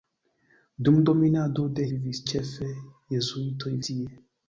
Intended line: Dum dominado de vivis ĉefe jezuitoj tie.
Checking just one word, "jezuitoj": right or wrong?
right